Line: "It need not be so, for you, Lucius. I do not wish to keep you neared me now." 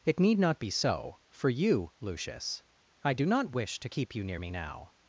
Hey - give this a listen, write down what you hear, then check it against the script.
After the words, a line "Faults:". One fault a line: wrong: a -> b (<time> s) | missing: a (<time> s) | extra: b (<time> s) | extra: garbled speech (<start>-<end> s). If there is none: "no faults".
"It need not be so, for you, Lucius. I do not wish to keep you near me now."
Faults:
wrong: neared -> near (4.2 s)